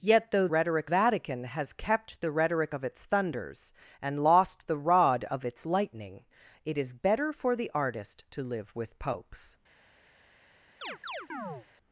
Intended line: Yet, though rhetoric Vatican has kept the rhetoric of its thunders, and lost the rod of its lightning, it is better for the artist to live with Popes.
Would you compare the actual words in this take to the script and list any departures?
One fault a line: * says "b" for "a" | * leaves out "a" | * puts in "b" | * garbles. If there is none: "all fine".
all fine